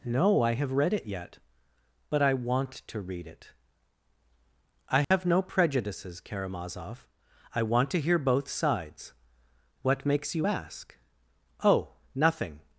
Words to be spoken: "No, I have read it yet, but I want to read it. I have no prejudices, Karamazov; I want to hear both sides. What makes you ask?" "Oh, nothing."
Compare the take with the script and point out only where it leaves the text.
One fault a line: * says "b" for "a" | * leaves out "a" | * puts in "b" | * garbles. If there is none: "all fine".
all fine